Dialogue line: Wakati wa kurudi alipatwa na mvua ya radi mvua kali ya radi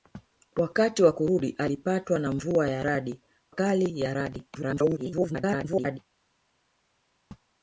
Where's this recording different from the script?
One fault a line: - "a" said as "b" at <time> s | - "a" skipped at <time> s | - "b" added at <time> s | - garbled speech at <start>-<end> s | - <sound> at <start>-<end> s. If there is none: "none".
- "mvua" skipped at 3.2 s
- garbled speech at 4.5-6.0 s